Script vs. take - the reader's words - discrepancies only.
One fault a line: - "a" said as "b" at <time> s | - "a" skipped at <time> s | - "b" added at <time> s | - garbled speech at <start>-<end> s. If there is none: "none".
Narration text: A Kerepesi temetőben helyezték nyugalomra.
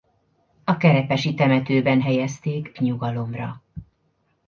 none